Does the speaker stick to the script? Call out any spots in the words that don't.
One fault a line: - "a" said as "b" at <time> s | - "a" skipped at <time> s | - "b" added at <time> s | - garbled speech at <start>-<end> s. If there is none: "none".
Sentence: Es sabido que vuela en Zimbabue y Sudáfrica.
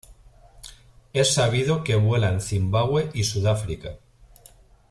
none